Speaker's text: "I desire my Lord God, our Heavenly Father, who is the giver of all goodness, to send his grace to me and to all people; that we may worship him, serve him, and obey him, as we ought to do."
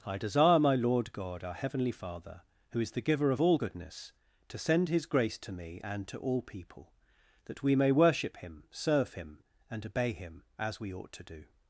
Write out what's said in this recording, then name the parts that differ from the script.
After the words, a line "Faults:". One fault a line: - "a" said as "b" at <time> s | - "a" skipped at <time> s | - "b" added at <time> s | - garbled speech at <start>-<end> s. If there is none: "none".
"I desire my Lord God, our Heavenly Father, who is the giver of all goodness, to send his grace to me and to all people; that we may worship him, serve him, and obey him, as we ought to do."
Faults:
none